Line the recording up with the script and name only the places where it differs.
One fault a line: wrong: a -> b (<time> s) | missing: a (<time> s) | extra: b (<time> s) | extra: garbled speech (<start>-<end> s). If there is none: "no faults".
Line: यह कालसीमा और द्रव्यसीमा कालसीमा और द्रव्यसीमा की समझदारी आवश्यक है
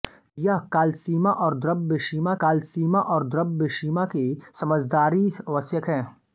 no faults